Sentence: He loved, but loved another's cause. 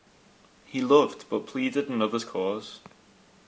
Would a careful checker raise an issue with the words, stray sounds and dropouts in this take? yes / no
yes